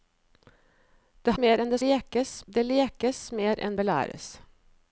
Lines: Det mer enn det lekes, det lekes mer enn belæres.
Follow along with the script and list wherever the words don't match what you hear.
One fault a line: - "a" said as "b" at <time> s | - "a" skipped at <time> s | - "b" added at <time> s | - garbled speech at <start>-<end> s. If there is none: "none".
none